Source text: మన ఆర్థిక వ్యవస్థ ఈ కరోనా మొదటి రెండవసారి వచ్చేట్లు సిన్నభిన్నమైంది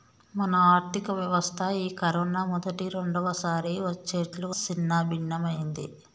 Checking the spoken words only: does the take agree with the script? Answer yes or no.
yes